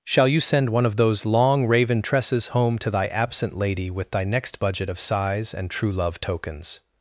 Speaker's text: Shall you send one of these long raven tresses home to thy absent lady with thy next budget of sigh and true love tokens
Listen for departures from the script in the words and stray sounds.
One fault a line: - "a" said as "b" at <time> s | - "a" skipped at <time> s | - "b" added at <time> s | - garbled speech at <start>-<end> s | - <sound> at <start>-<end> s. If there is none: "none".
- "these" said as "those" at 0.9 s
- "sigh" said as "sighs" at 5.0 s